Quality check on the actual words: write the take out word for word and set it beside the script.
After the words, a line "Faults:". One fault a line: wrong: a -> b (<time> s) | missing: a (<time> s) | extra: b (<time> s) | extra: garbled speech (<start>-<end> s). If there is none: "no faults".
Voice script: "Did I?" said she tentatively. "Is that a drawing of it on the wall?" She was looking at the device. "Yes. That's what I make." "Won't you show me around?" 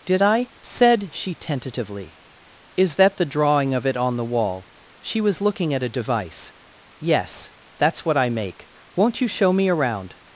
"Did I?" said she tentatively. "Is that the drawing of it on the wall?" She was looking at a device. "Yes. That's what I make." "Won't you show me around?"
Faults:
wrong: a -> the (3.2 s)
wrong: the -> a (5.8 s)